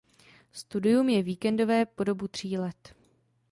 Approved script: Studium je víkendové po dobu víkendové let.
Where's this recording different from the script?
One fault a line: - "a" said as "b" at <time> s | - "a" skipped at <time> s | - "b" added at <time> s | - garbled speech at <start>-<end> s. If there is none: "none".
- "víkendové" said as "tří" at 2.3 s